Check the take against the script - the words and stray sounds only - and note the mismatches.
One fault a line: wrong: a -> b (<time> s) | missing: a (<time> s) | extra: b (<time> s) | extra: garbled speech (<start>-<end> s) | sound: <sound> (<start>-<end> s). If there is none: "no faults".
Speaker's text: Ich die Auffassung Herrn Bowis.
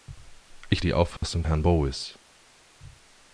sound: dropout (1.2-1.2 s)